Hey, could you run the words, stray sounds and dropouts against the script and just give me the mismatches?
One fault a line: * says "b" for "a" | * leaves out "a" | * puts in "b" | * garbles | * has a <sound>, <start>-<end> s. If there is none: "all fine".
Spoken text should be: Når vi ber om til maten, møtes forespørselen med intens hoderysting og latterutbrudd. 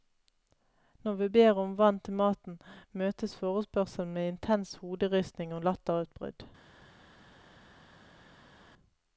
* puts in "vann"